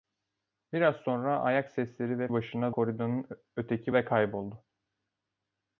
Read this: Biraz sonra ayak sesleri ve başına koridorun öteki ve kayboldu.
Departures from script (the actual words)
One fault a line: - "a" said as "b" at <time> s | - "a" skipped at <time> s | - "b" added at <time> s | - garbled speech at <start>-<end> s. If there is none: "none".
none